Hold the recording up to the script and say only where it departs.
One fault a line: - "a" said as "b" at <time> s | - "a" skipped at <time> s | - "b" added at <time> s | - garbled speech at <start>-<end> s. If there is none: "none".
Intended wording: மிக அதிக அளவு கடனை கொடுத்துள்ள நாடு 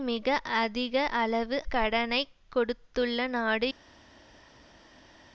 none